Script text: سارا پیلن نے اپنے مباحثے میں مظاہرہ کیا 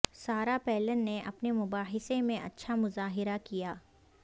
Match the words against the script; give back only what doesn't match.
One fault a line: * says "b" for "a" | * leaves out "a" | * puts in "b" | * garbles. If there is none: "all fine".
* puts in "اچھا"